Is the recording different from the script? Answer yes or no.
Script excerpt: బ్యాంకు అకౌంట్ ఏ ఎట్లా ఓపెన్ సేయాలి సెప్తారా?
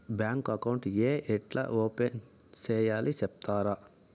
no